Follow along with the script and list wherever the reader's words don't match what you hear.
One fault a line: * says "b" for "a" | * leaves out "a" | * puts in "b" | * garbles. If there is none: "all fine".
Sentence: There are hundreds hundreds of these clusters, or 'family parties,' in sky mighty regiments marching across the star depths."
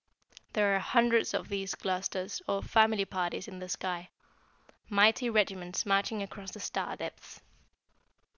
* leaves out "hundreds"
* puts in "the"